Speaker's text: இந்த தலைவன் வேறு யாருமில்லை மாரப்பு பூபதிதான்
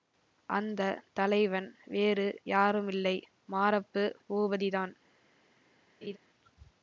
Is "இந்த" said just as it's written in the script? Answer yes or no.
no